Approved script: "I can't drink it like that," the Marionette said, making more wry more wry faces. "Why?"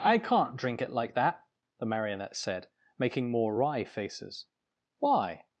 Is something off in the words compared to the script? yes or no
yes